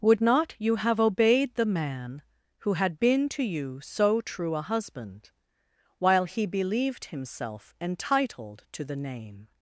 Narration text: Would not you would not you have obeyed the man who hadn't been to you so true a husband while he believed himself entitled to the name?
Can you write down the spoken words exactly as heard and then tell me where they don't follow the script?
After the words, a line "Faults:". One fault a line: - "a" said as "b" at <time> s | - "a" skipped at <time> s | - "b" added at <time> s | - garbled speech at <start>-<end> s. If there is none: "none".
Would not you have obeyed the man who had been to you so true a husband while he believed himself entitled to the name?
Faults:
- "would not you" skipped at 0.8 s
- "hadn't" said as "had" at 2.7 s